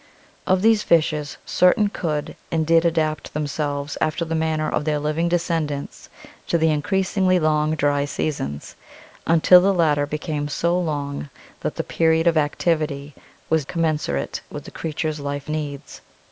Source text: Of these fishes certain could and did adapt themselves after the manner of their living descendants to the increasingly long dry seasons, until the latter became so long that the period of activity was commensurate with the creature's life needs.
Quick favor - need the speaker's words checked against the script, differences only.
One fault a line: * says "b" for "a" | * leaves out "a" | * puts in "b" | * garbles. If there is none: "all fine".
all fine